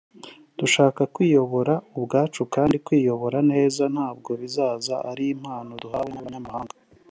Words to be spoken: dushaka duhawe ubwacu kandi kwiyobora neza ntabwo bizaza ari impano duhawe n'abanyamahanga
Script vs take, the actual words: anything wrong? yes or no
yes